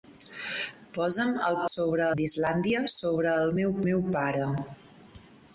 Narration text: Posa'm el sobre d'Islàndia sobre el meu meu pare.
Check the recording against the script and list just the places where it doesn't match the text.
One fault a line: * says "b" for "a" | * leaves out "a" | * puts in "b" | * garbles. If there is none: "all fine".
all fine